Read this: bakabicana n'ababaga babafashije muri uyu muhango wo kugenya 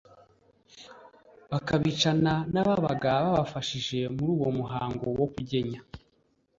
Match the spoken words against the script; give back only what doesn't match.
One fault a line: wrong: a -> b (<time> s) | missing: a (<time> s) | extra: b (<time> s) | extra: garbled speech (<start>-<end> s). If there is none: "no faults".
wrong: uyu -> uwo (4.4 s)